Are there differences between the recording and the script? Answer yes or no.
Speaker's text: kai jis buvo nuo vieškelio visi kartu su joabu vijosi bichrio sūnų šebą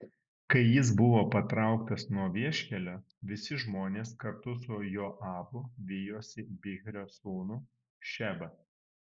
yes